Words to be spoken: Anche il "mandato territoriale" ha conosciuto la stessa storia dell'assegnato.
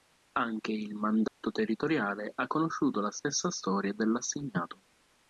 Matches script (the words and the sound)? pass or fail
fail